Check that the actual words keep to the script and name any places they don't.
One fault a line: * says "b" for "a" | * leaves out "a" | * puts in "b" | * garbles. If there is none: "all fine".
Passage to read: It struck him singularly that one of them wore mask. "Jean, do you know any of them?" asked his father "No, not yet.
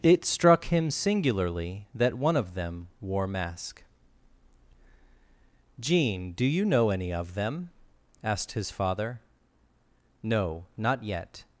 all fine